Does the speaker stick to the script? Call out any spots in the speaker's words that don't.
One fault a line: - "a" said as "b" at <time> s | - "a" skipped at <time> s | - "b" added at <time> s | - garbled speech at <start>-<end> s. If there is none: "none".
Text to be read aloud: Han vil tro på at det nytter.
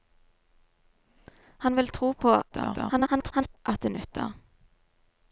- garbled speech at 2.5-3.6 s